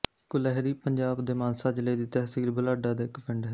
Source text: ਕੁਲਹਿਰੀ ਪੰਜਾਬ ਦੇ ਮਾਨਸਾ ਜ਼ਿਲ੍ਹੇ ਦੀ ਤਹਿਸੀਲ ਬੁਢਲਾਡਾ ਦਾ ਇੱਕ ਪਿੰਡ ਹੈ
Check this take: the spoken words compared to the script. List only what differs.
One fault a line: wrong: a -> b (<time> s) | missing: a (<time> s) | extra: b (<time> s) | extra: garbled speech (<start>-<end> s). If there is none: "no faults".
no faults